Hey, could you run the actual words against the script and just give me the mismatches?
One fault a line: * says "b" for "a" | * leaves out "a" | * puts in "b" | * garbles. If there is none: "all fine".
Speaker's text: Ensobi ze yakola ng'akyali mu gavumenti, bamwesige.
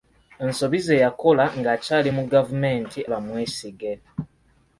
all fine